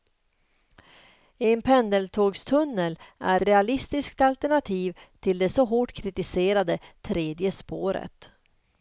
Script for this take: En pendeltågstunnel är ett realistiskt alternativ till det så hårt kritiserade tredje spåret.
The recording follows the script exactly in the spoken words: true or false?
false